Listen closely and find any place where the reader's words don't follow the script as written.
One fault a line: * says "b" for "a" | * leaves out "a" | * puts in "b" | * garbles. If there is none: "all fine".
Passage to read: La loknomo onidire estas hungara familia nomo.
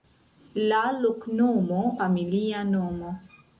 * leaves out "onidire estas hungara"